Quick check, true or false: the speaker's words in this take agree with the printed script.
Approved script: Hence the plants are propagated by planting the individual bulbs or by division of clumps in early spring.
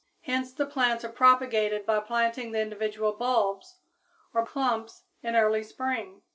false